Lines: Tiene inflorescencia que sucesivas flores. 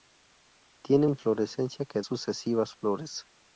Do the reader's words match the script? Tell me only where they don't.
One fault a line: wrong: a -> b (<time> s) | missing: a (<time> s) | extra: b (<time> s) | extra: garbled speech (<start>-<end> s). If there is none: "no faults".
no faults